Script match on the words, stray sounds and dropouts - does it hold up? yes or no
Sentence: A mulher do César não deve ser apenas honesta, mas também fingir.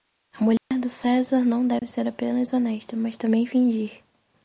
no